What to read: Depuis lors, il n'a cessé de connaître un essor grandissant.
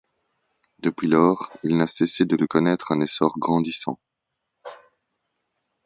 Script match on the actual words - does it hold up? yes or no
no